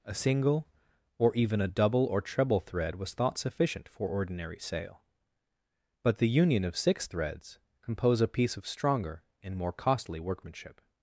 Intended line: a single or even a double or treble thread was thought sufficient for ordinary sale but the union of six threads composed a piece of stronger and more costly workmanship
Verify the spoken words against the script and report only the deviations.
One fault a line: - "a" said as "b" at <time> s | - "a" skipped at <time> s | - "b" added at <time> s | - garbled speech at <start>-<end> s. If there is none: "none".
- "composed" said as "compose" at 7.8 s